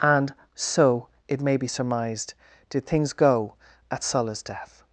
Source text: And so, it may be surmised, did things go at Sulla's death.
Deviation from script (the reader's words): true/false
false